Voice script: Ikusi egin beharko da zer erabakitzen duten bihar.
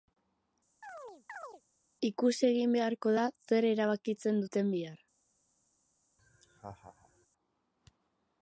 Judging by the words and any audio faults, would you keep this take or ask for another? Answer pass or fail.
fail